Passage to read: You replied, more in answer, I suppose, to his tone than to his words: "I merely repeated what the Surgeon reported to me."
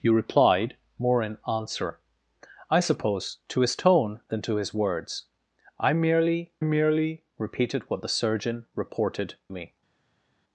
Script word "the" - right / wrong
right